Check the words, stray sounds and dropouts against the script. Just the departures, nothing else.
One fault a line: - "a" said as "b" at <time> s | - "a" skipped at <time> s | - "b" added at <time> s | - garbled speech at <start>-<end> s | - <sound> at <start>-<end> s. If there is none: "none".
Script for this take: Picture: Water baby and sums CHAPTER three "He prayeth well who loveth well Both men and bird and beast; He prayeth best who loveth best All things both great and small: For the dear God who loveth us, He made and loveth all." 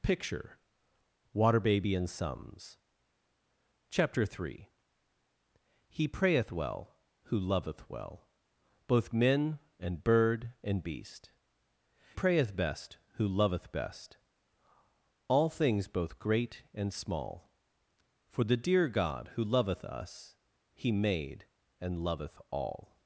- "He" skipped at 11.3 s